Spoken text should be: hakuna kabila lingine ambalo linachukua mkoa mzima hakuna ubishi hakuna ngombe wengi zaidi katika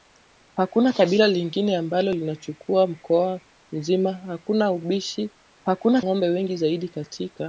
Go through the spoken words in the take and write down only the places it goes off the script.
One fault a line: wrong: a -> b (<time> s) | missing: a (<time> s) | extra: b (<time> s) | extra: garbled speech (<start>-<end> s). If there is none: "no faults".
no faults